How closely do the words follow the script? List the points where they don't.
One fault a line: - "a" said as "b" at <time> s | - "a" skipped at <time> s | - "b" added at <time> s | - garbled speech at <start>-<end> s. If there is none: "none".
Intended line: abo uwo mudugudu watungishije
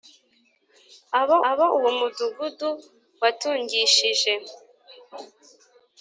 - "abo" added at 1.5 s